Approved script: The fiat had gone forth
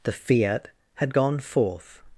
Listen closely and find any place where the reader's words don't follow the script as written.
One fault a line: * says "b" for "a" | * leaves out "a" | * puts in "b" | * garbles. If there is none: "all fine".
all fine